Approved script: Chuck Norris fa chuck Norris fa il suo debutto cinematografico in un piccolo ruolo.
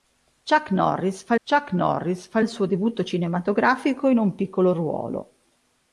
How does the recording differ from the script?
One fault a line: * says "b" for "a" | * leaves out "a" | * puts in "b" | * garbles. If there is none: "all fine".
all fine